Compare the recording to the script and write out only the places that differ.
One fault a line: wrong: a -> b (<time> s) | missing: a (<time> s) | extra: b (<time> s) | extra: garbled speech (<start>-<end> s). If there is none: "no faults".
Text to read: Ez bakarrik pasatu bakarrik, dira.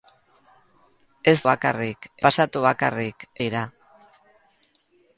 no faults